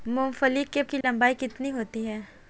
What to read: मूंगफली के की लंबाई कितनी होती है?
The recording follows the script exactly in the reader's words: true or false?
true